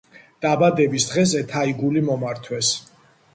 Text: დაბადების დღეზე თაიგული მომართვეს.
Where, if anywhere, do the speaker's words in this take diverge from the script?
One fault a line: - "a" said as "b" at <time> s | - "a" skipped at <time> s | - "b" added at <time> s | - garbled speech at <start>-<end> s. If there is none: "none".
none